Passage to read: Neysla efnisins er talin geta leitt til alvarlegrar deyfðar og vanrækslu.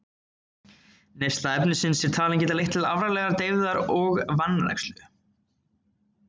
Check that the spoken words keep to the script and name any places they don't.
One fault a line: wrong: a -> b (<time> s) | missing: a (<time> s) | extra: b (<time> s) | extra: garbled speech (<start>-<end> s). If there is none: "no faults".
no faults